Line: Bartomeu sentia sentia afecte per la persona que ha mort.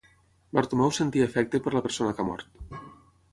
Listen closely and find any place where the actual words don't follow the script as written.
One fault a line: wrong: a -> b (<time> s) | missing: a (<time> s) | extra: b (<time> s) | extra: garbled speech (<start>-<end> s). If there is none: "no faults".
missing: sentia (1.3 s)